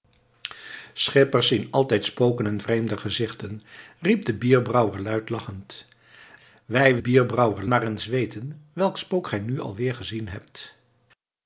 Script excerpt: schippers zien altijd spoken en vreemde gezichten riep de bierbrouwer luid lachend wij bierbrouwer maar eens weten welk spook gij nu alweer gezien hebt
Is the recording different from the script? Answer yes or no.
no